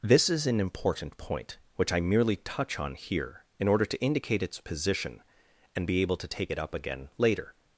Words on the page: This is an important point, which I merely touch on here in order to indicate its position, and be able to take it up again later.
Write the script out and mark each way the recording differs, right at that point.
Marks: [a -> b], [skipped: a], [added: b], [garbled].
This is an important point, which I merely touch on here in order to indicate its position, and be able to take it up again later.